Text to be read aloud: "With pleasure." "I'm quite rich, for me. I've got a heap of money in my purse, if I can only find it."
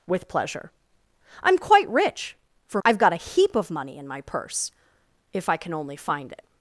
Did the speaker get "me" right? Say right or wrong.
wrong